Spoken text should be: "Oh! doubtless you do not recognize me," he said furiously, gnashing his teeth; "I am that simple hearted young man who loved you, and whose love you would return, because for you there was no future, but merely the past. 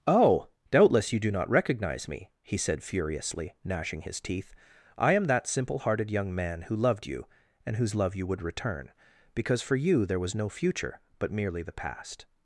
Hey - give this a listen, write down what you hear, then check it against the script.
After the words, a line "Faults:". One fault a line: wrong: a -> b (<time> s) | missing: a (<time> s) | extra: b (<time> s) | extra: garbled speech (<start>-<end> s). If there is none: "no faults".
"Oh! doubtless you do not recognize me," he said furiously, gnashing his teeth; "I am that simple hearted young man who loved you, and whose love you would return, because for you there was no future, but merely the past.
Faults:
no faults